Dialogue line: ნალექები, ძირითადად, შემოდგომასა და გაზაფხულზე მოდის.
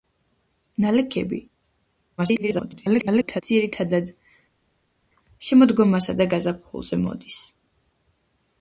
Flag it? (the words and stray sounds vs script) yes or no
yes